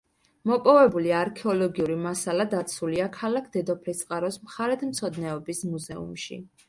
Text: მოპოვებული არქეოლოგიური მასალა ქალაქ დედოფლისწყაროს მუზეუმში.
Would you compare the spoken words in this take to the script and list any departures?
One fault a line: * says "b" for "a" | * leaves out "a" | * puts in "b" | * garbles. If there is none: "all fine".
* puts in "დაცულია"
* puts in "მხარეთმცოდნეობის"